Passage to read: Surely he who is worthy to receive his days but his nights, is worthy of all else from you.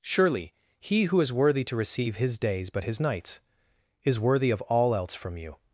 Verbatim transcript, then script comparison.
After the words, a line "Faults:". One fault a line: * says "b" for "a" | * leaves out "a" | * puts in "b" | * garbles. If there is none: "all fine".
Surely he who is worthy to receive his days but his nights, is worthy of all else from you.
Faults:
all fine